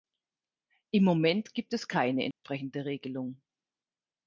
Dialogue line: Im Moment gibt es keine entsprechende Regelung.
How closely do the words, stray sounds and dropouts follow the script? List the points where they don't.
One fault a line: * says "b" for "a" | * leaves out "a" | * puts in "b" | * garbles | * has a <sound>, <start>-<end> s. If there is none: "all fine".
* has a dropout, 2.3-2.4 s